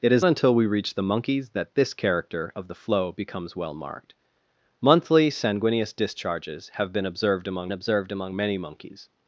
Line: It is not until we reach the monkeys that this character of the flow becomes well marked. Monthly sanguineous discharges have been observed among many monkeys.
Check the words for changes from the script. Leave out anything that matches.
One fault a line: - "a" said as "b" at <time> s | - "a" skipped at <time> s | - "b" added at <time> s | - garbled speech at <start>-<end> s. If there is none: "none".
- "not" skipped at 0.2 s
- "observed among" added at 7.7 s